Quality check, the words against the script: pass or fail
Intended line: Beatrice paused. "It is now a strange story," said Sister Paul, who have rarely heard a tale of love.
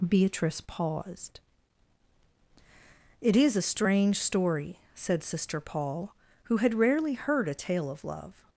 fail